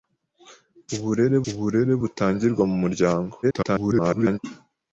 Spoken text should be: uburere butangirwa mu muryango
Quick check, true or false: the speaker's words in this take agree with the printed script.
false